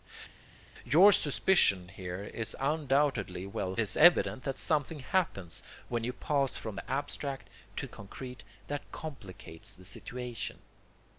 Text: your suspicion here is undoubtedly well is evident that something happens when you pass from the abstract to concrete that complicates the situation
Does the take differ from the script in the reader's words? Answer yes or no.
no